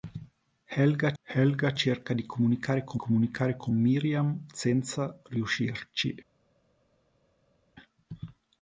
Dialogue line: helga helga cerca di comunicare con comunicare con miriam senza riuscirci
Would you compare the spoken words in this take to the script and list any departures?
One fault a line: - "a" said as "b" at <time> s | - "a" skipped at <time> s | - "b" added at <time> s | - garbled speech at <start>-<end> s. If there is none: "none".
none